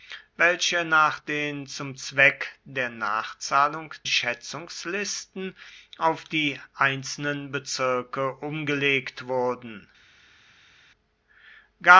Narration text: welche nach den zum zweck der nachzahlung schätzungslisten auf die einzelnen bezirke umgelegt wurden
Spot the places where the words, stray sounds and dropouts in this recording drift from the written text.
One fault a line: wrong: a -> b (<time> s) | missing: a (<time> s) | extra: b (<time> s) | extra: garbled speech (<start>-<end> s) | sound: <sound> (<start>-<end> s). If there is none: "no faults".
no faults